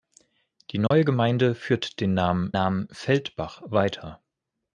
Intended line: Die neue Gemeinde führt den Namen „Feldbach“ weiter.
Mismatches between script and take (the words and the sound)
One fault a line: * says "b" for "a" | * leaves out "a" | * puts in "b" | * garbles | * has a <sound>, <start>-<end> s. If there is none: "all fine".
* has a dropout, 0.9-0.9 s
* puts in "Namen"